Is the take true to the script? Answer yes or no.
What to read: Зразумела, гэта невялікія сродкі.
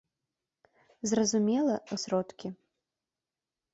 no